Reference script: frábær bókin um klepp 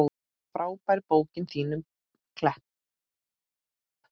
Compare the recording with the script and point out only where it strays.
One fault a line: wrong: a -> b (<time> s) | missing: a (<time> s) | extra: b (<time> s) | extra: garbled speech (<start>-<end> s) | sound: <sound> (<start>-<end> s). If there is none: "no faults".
extra: þín (1.5 s)